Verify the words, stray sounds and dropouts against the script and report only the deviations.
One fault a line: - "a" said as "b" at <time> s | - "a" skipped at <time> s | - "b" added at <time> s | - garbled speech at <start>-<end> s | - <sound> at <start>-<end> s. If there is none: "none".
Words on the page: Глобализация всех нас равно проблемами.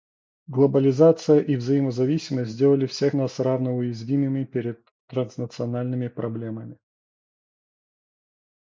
- "и взаимозависимость сделали" added at 1.4 s
- "уязвимыми перед транснациональными" added at 3.7 s